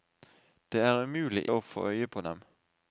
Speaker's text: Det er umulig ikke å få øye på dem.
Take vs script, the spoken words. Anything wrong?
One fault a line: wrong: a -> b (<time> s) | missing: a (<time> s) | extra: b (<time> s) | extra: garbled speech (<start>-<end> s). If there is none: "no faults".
missing: ikke (1.4 s)